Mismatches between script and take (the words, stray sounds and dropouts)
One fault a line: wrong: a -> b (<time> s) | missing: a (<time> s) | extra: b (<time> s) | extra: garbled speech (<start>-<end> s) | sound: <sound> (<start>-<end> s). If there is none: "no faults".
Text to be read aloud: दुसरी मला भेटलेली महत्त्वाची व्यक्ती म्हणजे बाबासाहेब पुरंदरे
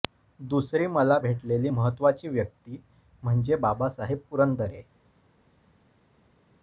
no faults